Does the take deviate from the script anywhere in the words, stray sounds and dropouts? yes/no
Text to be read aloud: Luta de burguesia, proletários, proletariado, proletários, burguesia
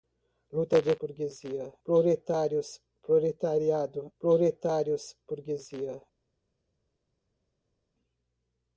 no